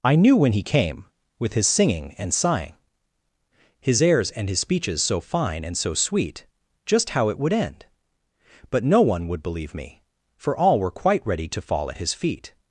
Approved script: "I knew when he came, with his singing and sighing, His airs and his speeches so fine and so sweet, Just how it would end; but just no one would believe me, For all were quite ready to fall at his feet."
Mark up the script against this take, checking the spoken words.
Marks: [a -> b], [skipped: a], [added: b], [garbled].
"I knew when he came, with his singing and sighing, His airs and his speeches so fine and so sweet, Just how it would end; but [skipped: just] no one would believe me, For all were quite ready to fall at his feet."